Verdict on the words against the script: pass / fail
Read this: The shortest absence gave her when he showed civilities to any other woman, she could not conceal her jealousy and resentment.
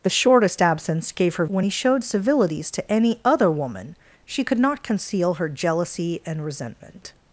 pass